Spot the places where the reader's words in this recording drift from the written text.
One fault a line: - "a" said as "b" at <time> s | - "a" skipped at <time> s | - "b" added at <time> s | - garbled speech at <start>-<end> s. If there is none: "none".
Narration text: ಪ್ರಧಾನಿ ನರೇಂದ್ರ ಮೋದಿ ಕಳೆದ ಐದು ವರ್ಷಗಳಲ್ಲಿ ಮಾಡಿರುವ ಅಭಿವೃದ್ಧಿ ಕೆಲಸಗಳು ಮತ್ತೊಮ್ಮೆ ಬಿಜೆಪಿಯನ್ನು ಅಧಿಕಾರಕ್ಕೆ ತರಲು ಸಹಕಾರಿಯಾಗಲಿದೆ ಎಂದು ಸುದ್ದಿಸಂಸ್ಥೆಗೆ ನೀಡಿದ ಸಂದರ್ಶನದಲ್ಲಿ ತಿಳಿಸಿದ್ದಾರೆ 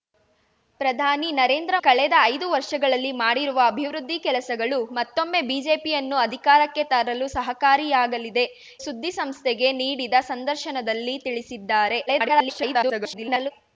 - "ಮೋದಿ" skipped at 1.8 s
- "ಎಂದು" skipped at 8.4 s
- garbled speech at 12.1-13.5 s